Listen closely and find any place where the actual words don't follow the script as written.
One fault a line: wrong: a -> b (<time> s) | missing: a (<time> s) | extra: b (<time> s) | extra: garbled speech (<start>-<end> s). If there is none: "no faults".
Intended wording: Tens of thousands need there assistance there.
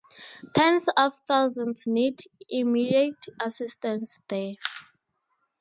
wrong: there -> immediate (2.5 s)